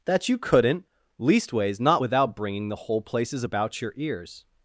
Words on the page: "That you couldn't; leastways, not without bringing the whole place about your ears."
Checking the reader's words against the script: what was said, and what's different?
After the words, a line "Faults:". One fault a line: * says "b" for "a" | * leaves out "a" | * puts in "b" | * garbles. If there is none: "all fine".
"That you couldn't; leastways, not without bringing the whole places about your ears."
Faults:
* says "places" for "place"